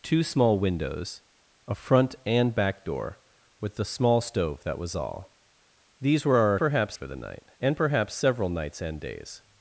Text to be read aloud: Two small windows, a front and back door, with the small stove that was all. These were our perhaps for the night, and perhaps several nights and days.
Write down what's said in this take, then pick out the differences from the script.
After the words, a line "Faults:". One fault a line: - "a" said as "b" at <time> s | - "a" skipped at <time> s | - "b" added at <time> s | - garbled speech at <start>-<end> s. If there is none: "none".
Two small windows, a front and back door, with the small stove that was all. These were our perhaps for the night, and perhaps several nights and days.
Faults:
none